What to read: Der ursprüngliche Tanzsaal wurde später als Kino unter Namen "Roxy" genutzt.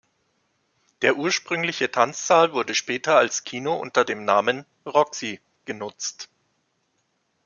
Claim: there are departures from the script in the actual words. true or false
true